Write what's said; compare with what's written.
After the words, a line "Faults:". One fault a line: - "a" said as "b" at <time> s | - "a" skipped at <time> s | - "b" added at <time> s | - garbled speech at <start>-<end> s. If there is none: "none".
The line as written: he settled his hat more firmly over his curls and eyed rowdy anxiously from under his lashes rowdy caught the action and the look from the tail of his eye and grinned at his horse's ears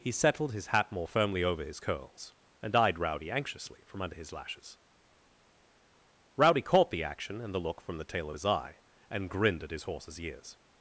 he settled his hat more firmly over his curls and eyed rowdy anxiously from under his lashes rowdy caught the action and the look from the tail of his eye and grinned at his horse's ears
Faults:
none